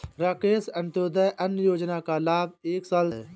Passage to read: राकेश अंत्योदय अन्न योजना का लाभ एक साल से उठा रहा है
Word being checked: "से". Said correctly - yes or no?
no